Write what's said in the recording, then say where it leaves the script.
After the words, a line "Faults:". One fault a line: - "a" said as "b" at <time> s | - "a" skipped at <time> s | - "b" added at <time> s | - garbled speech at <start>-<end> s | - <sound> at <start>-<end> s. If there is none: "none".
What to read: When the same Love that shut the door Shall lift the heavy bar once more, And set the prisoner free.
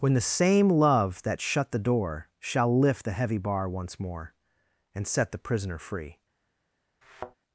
When the same Love that shut the door Shall lift the heavy bar once more, And set the prisoner free.
Faults:
- thud at 7.0-7.4 s